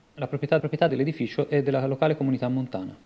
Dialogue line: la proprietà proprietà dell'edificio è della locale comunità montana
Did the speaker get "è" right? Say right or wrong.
right